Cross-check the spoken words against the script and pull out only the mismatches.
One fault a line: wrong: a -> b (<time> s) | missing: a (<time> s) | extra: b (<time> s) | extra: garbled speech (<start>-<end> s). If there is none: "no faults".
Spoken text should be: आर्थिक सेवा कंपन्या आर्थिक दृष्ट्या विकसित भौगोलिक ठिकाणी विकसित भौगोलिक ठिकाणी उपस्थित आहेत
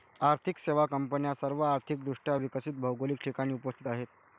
extra: सर्व (1.4 s)
missing: विकसित भौगोलिक ठिकाणी (3.5 s)